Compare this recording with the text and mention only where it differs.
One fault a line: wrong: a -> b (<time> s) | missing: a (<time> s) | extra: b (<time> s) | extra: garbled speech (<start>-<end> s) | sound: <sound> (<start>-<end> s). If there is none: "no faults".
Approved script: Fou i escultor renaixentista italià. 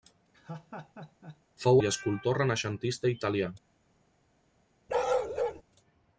sound: laugh (0.3-1.4 s)
sound: bark (4.9-5.6 s)